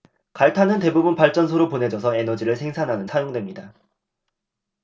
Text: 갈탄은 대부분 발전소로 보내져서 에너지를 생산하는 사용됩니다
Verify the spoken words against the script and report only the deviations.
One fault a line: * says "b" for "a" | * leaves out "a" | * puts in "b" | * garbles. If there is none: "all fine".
all fine